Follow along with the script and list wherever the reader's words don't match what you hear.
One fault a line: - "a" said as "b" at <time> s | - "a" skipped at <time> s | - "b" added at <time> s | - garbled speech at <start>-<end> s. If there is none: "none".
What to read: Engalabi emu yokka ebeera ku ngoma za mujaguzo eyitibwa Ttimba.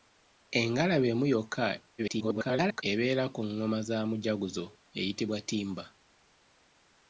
- garbled speech at 2.0-2.8 s